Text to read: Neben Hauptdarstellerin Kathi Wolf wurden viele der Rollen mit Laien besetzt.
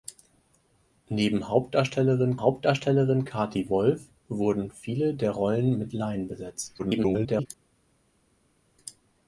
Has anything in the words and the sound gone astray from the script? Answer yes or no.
yes